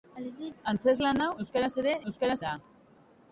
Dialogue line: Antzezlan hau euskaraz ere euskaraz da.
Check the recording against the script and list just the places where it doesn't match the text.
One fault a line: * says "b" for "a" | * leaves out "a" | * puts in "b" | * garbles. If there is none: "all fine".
all fine